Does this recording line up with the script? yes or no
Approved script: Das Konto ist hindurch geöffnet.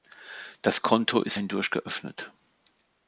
yes